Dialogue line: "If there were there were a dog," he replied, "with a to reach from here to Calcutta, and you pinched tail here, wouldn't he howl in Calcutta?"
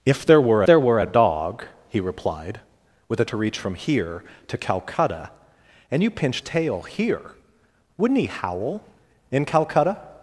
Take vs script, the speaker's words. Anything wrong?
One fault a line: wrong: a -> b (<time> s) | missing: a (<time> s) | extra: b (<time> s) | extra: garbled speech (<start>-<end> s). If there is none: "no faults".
no faults